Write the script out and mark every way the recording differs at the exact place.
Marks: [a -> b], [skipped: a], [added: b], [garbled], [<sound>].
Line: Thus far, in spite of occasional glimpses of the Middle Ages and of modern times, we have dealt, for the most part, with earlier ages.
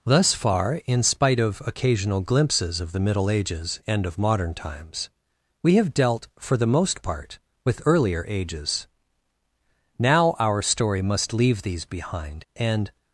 Thus far, in spite of occasional glimpses of the Middle Ages and of modern times, we have dealt, for the most part, with earlier ages. [added: Now our story must leave these behind and]